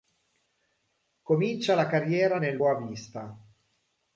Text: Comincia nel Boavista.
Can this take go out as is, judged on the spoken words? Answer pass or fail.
fail